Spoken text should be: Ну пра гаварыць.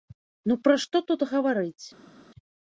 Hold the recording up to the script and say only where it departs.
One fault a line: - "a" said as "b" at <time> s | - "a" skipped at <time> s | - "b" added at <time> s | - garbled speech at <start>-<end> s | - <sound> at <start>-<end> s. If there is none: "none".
- "што тут" added at 0.8 s